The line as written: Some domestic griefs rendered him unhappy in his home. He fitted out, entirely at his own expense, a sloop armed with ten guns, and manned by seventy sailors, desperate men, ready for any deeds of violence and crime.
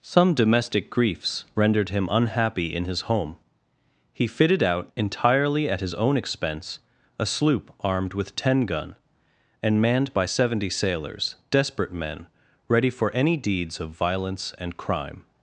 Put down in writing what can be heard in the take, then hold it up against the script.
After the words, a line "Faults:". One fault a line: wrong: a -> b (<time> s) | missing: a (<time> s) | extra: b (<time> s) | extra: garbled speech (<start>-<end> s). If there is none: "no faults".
Some domestic griefs rendered him unhappy in his home. He fitted out, entirely at his own expense, a sloop armed with ten gun, and manned by seventy sailors, desperate men, ready for any deeds of violence and crime.
Faults:
wrong: guns -> gun (8.7 s)